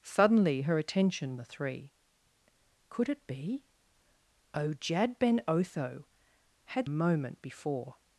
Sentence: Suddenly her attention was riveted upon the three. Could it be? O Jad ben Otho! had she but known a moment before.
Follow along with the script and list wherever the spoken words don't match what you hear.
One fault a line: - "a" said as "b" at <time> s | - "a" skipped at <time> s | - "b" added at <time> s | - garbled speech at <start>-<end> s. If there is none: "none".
- "was riveted upon" skipped at 1.4 s
- "she but known" skipped at 6.9 s